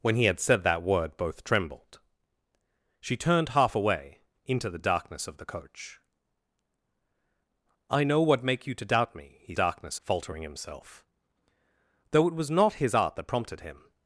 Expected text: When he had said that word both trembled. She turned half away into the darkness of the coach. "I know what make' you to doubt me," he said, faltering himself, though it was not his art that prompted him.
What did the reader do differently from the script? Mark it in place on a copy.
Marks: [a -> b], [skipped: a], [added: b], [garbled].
When he had said that word both trembled. She turned half away into the darkness of the coach. "I know what make' you to doubt me," he [said, -> darkness] faltering himself, though it was not his art that prompted him.